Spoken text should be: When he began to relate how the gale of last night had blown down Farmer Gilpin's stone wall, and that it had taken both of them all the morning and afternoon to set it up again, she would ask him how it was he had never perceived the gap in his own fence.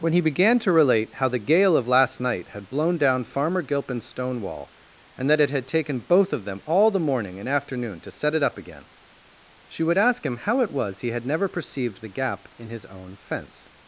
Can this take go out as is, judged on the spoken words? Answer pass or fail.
pass